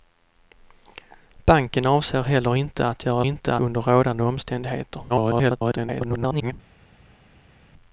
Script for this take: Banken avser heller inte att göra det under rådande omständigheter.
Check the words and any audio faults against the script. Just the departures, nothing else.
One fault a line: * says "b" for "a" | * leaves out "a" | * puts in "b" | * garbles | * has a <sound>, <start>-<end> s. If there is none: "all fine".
* says "inte" for "det"
* garbles